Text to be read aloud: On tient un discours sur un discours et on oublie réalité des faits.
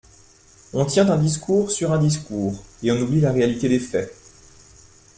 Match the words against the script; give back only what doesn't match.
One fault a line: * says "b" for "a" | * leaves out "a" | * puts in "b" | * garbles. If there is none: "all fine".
* puts in "la"